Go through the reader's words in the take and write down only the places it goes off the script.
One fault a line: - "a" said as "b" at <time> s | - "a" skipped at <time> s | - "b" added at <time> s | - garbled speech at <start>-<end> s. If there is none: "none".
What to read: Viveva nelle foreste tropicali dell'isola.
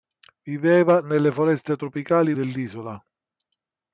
none